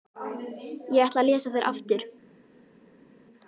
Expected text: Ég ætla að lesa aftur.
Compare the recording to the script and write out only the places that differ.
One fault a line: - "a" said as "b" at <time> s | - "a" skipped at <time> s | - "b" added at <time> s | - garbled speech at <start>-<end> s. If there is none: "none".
- "þær" added at 1.6 s